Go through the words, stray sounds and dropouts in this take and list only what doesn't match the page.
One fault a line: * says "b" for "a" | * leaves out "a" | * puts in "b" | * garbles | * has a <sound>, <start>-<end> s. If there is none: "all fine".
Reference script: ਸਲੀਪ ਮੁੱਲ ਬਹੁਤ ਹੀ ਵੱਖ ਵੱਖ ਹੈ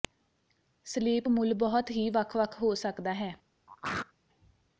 * puts in "ਹੋ ਸਕਦਾ"
* has a throat clearing, 3.7-4.1 s